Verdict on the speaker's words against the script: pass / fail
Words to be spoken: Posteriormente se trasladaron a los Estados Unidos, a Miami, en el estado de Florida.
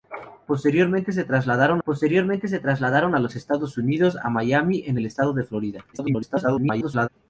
fail